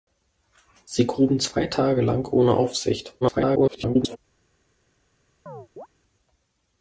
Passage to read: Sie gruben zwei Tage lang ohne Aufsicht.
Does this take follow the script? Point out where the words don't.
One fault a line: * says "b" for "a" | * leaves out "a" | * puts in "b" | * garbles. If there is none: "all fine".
* garbles